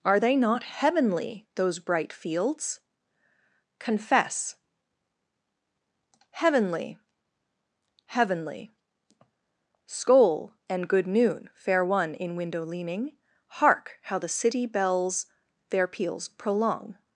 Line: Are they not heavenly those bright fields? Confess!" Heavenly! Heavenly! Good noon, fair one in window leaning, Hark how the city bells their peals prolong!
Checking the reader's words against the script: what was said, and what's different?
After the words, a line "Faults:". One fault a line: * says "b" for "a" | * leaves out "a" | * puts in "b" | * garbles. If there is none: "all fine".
Are they not heavenly those bright fields? Confess!" Heavenly! Heavenly! Skål and good noon, fair one in window leaning, Hark how the city bells their peals prolong!
Faults:
* puts in "Skål and"